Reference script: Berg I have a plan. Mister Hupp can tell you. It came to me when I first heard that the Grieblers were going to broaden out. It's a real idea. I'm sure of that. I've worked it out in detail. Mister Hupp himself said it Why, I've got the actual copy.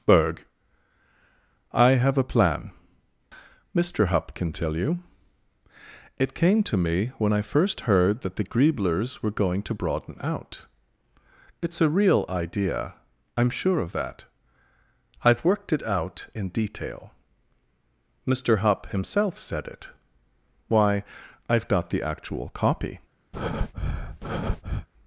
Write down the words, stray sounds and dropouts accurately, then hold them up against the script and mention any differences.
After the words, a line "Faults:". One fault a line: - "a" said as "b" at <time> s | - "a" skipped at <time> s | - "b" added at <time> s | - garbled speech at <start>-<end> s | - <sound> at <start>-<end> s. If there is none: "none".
Berg I have a plan. Mister Hupp can tell you. It came to me when I first heard that the Grieblers were going to broaden out. It's a real idea. I'm sure of that. I've worked it out in detail. Mister Hupp himself said it Why, I've got the actual copy.
Faults:
- breath at 23.3-24.9 s